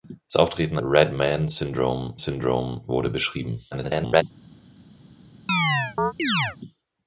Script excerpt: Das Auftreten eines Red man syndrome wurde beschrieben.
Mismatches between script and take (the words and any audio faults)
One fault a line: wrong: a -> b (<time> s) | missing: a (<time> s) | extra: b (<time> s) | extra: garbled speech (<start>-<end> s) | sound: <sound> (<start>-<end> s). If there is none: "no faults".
missing: eines (0.8 s)
extra: syndrome (2.2 s)
extra: garbled speech (3.7-4.2 s)
sound: chirp (5.5-6.6 s)